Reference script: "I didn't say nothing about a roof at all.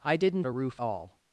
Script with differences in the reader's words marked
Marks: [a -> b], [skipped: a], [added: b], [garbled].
"I didn't [skipped: say nothing about] a roof [skipped: at] all.